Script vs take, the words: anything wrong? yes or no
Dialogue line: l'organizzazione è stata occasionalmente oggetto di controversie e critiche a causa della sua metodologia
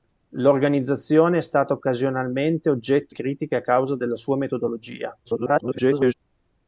yes